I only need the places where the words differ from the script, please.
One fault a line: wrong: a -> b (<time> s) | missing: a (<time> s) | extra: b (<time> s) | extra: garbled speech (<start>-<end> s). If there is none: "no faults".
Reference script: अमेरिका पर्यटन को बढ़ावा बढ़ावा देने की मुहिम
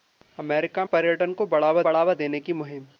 no faults